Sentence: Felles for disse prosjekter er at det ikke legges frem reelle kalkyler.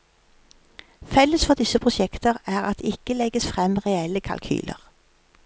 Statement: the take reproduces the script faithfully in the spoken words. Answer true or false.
true